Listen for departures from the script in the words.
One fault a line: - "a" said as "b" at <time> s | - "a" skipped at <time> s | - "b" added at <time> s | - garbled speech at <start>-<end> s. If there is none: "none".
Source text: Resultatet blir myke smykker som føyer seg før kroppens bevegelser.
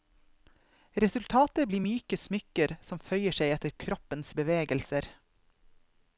- "før" said as "etter" at 3.5 s